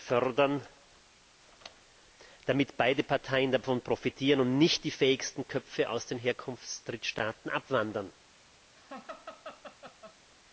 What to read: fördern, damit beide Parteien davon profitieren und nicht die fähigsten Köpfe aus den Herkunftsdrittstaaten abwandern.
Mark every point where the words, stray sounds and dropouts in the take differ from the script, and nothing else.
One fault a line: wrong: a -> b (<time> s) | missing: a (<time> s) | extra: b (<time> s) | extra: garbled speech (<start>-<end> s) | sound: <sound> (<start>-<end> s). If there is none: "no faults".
sound: laugh (8.8-10.2 s)